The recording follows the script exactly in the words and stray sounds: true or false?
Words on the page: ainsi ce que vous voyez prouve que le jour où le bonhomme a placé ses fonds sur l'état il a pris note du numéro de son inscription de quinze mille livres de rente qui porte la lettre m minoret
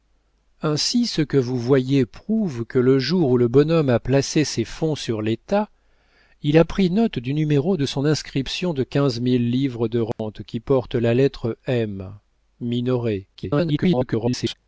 false